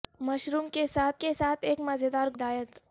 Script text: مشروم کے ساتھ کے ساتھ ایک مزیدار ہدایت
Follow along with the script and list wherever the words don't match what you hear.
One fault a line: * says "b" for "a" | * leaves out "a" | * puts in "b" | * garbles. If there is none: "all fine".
all fine